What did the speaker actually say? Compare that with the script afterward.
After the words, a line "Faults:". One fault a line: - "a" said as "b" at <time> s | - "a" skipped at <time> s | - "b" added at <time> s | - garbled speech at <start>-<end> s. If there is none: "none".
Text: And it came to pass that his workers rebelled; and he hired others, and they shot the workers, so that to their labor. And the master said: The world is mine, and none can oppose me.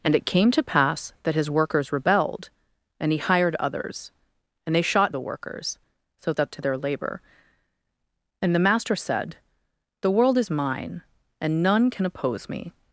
And it came to pass that his workers rebelled; and he hired others, and they shot the workers, so that to their labor. And the master said: The world is mine, and none can oppose me.
Faults:
none